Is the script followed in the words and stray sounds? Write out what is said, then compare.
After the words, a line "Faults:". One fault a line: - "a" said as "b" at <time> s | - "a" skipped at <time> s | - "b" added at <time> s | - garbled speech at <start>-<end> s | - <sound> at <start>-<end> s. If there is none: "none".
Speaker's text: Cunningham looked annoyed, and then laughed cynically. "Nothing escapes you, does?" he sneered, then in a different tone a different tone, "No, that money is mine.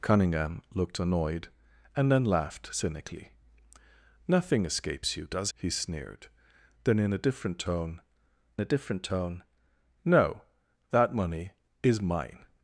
Cunningham looked annoyed, and then laughed cynically. "Nothing escapes you, does?" he sneered, then in a different tone a different tone, "No, that money is mine.
Faults:
none